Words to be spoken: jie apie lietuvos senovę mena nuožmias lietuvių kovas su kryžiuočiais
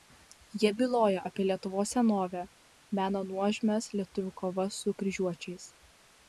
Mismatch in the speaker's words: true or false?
true